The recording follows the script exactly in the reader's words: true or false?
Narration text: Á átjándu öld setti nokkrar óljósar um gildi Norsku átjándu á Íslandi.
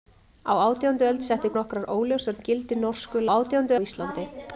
true